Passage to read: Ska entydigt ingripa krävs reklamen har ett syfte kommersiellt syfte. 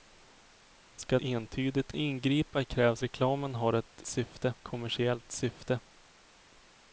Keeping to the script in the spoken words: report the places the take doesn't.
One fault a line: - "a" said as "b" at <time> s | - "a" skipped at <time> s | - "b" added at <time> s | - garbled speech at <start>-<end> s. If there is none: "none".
none